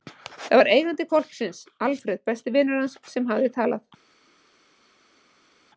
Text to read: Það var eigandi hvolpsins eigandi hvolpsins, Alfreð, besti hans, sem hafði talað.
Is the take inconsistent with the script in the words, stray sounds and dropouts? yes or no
yes